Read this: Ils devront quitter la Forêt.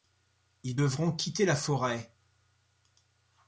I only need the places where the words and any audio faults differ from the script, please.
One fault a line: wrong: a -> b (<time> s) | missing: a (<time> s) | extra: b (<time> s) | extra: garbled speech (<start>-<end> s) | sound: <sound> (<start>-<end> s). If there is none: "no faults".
no faults